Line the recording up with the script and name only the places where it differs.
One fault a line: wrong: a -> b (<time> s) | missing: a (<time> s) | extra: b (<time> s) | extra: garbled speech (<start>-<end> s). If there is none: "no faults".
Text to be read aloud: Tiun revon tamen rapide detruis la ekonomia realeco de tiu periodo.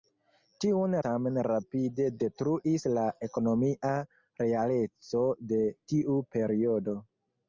missing: revon (0.9 s)